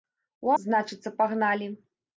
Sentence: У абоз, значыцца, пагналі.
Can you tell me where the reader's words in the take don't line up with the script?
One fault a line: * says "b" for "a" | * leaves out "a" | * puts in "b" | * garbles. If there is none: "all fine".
* leaves out "абоз"